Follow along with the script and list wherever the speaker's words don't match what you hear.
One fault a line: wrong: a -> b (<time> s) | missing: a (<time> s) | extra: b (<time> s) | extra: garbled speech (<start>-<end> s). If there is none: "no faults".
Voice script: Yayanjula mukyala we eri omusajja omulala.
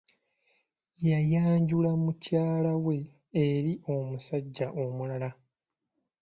no faults